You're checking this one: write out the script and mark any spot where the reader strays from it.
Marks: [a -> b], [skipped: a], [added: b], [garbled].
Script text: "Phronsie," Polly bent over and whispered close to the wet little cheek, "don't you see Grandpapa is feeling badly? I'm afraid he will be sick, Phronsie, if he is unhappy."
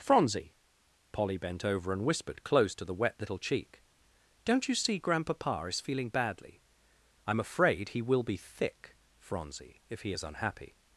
"Phronsie," Polly bent over and whispered close to the wet little cheek, "don't you see Grandpapa is feeling badly? I'm afraid he will be [sick, -> thick] Phronsie, if he is unhappy."